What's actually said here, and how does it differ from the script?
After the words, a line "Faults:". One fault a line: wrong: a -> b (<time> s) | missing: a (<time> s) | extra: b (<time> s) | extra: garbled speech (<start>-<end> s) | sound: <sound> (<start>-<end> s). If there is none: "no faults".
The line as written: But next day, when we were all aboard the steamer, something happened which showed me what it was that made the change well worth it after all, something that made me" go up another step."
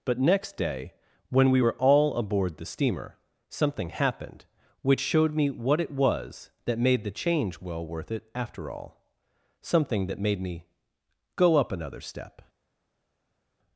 But next day, when we were all aboard the steamer, something happened which showed me what it was that made the change well worth it after all, something that made me" go up another step."
Faults:
no faults